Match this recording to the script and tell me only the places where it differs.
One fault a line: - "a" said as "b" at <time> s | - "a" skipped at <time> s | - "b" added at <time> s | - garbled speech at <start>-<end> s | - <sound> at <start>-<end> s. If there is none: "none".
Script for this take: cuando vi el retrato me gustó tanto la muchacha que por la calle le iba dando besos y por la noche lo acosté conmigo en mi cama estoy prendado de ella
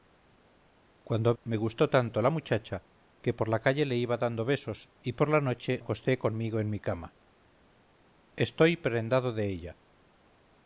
- "vi el retrato" skipped at 1.4 s
- "lo" skipped at 5.8 s